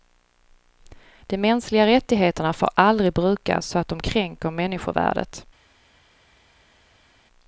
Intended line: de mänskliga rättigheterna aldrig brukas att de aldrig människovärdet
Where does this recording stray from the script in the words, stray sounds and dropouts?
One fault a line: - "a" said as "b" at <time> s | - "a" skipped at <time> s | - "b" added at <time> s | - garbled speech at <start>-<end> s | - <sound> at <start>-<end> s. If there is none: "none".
- "får" added at 2.5 s
- "så" added at 3.7 s
- "aldrig" said as "kränker" at 4.0 s